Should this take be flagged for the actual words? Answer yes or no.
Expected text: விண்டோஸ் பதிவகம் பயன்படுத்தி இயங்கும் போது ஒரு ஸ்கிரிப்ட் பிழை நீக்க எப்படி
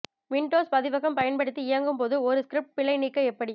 no